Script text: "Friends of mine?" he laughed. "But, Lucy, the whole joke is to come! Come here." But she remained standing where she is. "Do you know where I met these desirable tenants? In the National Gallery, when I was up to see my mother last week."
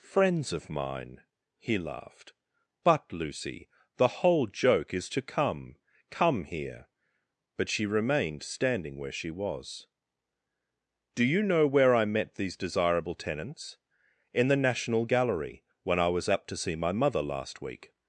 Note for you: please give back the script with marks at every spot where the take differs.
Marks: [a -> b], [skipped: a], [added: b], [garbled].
"Friends of mine?" he laughed. "But, Lucy, the whole joke is to come! Come here." But she remained standing where she [is. -> was] "Do you know where I met these desirable tenants? In the National Gallery, when I was up to see my mother last week."